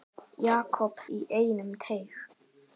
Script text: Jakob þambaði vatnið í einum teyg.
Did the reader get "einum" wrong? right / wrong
right